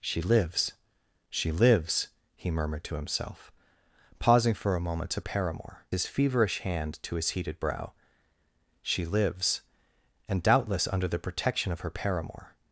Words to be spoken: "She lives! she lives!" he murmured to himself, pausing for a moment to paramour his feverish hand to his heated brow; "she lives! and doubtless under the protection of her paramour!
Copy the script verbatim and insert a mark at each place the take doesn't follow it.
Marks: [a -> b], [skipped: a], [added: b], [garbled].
"She lives! she lives!" he murmured to himself, pausing for a moment to paramour his feverish hand to his heated brow; "she lives! and doubtless under the protection of her paramour!